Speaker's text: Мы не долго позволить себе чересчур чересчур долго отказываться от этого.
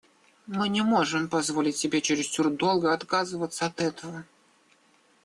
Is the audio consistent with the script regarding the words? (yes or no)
no